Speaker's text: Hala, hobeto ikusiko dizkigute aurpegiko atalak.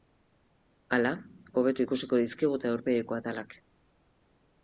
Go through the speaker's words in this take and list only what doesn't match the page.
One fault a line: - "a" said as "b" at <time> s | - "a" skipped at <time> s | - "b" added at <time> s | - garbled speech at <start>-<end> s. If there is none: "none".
none